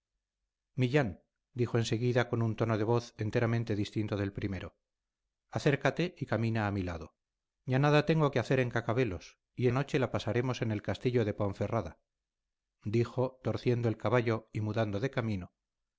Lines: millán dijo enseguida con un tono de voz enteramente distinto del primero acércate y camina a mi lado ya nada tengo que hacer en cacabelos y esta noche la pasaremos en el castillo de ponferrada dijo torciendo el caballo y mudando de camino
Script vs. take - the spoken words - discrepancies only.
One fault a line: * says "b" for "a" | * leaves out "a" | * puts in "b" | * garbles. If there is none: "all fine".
* leaves out "esta"